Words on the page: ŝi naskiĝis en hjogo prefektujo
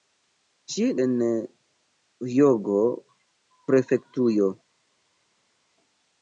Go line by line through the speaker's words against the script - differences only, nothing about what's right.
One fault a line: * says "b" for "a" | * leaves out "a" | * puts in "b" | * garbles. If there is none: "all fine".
* leaves out "naskiĝis"